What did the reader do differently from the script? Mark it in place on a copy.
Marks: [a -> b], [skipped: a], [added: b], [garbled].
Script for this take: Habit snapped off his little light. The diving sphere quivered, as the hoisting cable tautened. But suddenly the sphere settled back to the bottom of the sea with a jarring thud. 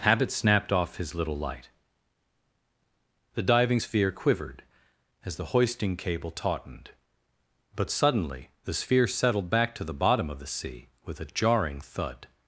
Habit snapped off his little light. The diving sphere quivered, as the hoisting cable tautened. But suddenly the sphere settled back to the bottom of the sea with a jarring thud.